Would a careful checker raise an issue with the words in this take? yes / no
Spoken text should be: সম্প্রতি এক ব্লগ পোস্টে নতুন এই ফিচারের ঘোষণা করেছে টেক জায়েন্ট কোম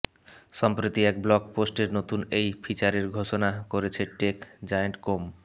no